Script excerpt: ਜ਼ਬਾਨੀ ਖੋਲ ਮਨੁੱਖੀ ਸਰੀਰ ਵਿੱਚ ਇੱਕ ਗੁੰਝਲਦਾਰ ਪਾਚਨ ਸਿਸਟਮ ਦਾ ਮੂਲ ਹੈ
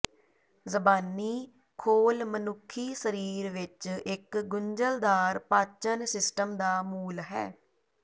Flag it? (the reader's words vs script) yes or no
no